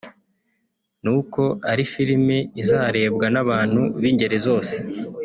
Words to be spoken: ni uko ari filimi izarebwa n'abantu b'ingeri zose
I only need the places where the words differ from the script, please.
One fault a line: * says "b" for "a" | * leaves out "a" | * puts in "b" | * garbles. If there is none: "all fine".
all fine